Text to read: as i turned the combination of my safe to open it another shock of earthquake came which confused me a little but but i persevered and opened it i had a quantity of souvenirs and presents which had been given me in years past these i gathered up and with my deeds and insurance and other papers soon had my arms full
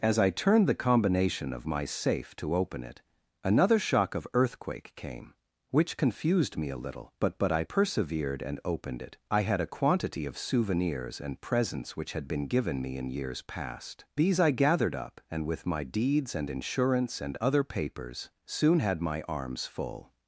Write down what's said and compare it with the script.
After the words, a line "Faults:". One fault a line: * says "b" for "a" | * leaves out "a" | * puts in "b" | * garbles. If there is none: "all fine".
as i turned the combination of my safe to open it another shock of earthquake came which confused me a little but but i persevered and opened it i had a quantity of souvenirs and presents which had been given me in years past these i gathered up and with my deeds and insurance and other papers soon had my arms full
Faults:
all fine